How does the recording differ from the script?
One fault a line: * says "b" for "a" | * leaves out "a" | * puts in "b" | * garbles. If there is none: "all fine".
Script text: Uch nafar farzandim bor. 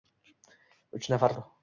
* leaves out "farzandim"